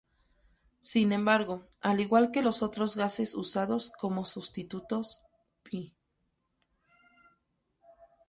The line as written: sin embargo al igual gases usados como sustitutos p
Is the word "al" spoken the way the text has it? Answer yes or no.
yes